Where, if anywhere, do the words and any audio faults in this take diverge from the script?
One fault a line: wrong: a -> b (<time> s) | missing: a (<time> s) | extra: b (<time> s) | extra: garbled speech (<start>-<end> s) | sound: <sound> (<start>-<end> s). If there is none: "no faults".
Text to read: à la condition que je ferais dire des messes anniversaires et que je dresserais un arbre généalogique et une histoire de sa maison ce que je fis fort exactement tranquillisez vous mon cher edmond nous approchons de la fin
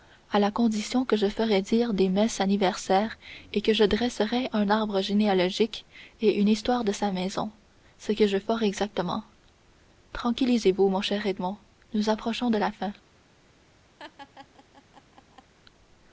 missing: fis (8.4 s)
sound: laugh (14.0-15.5 s)